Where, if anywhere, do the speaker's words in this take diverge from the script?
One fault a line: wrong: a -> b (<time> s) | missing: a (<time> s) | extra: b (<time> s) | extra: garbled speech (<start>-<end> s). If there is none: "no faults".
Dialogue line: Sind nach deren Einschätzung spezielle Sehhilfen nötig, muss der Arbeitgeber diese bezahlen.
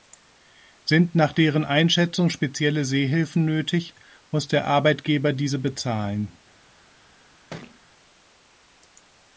no faults